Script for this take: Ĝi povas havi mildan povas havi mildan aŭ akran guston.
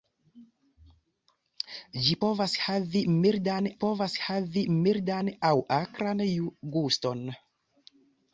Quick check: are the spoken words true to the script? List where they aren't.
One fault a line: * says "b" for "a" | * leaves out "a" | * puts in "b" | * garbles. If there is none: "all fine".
all fine